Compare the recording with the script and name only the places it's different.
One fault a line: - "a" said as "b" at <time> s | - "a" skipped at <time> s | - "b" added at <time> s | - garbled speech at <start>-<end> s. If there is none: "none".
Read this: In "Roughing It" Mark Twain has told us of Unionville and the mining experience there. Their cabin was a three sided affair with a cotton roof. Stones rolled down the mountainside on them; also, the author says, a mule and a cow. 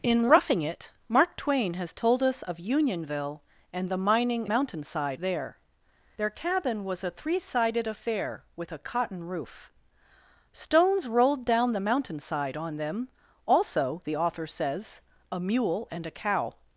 - "experience" said as "mountainside" at 4.5 s